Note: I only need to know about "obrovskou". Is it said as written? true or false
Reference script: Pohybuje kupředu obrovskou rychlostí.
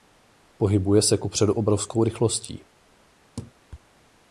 true